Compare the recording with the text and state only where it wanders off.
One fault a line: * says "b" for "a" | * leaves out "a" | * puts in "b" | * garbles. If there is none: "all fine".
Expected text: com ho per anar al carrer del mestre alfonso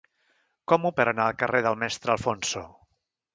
all fine